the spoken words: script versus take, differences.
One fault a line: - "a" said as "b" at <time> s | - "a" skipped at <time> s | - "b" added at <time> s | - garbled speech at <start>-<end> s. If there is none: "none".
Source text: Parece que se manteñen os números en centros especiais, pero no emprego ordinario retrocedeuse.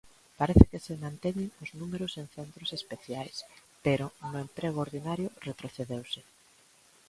none